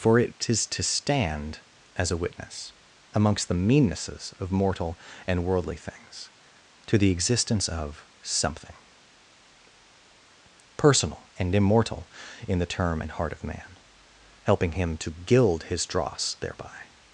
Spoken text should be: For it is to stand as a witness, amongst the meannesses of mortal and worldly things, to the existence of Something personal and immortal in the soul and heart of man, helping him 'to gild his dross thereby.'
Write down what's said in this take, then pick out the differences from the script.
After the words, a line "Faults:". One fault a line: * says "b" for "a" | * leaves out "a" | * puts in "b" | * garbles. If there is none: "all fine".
For it is to stand as a witness, amongst the meannesses of mortal and worldly things, to the existence of Something personal and immortal in the term and heart of man, helping him 'to gild his dross thereby.'
Faults:
* says "term" for "soul"